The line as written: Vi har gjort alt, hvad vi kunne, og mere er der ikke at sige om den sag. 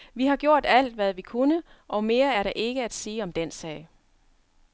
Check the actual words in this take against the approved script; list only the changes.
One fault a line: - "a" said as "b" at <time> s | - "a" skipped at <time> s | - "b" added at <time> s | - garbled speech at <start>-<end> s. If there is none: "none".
none